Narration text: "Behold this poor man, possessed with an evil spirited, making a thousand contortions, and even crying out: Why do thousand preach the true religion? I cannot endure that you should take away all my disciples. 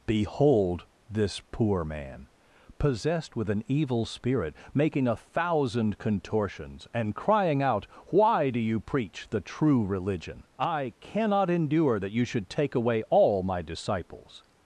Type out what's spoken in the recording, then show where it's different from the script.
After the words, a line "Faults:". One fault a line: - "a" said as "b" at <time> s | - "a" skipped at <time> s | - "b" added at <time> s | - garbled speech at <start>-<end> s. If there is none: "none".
"Behold this poor man, possessed with an evil spirit, making a thousand contortions, and crying out: Why do you preach the true religion? I cannot endure that you should take away all my disciples.
Faults:
- "spirited" said as "spirit" at 4.0 s
- "even" skipped at 7.1 s
- "thousand" said as "you" at 8.6 s